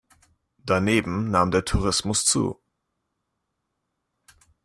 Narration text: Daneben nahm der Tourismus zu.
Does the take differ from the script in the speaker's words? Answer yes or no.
no